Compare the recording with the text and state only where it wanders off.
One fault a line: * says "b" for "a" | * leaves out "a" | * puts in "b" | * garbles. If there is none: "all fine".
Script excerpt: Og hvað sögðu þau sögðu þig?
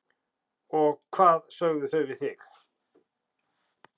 * says "við" for "sögðu"